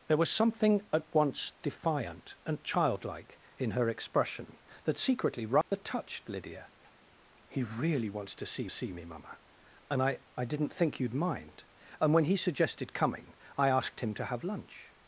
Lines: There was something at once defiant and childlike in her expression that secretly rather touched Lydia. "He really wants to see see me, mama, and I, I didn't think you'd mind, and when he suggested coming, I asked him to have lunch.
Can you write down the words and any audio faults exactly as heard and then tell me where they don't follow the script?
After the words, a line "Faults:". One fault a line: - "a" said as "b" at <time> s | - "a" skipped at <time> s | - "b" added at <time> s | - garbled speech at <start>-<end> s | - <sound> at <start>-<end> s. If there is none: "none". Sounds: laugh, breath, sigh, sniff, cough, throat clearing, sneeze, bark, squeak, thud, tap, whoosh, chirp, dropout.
There was something at once defiant and childlike in her expression that secretly rather touched Lydia. "He really wants to see see me, mama, and I, I didn't think you'd mind, and when he suggested coming, I asked him to have lunch.
Faults:
- dropout at 5.6-5.7 s